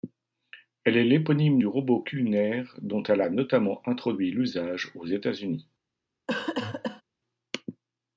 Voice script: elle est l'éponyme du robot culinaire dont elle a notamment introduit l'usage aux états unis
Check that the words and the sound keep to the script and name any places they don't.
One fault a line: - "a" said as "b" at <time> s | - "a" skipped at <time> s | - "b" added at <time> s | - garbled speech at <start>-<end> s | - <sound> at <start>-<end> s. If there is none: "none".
- cough at 6.3-7.0 s